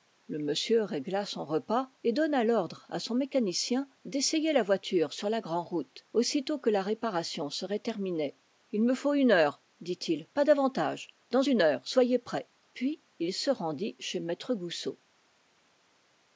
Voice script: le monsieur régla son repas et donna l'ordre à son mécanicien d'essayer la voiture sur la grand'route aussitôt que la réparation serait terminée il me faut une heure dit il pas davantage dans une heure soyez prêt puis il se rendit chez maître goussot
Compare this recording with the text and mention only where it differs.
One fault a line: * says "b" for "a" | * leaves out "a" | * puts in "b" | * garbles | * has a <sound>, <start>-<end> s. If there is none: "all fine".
all fine